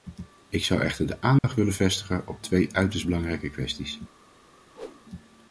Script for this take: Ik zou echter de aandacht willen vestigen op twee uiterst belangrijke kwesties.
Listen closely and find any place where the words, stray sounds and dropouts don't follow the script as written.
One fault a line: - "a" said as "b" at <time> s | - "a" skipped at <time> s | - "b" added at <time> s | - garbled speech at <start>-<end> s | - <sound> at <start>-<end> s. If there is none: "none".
- dropout at 1.4-1.4 s
- whoosh at 4.7-5.1 s